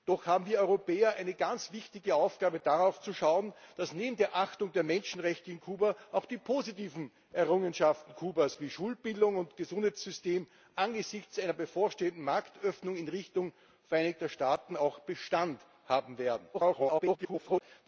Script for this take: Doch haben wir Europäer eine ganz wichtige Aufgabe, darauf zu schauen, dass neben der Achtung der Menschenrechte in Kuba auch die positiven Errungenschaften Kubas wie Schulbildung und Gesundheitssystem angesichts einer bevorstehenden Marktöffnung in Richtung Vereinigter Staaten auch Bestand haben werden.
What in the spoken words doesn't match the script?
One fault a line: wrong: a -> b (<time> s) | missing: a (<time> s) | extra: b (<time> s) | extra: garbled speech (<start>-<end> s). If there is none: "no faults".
extra: garbled speech (16.5-17.6 s)